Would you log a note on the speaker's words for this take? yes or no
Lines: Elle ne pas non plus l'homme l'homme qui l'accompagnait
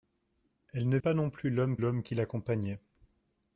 no